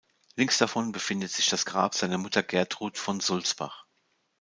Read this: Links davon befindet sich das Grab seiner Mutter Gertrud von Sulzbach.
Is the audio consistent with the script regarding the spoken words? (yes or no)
yes